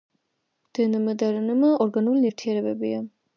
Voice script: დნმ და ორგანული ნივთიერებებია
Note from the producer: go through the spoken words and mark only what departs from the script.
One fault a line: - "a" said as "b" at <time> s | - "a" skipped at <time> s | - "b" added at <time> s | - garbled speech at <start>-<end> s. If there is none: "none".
- "რნმ" added at 1.4 s